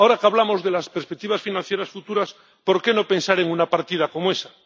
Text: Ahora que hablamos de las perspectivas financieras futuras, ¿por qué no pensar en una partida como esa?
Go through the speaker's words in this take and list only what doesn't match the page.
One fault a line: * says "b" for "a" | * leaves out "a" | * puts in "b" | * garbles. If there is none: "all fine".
all fine